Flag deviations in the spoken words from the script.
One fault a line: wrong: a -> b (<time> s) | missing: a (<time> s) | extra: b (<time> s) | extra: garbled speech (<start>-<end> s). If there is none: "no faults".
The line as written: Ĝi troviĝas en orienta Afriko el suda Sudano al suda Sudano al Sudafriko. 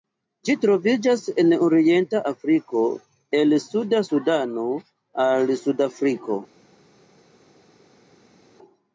missing: suda Sudano al (5.6 s)